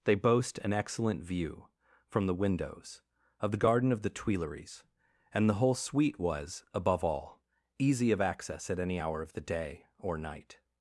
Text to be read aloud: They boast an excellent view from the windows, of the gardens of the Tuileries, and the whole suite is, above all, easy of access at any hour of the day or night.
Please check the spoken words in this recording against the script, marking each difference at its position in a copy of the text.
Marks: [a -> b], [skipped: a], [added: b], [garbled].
They boast an excellent view from the windows, of the [gardens -> garden] of the Tuileries, and the whole suite [is, -> was] above all, easy of access at any hour of the day or night.